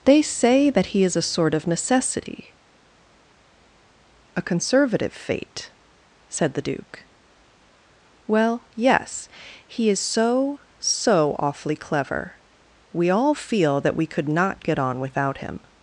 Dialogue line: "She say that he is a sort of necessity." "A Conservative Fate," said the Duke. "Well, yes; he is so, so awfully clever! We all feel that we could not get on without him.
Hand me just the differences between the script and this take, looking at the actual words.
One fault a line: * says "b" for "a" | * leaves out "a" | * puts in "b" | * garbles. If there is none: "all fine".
* says "They" for "She"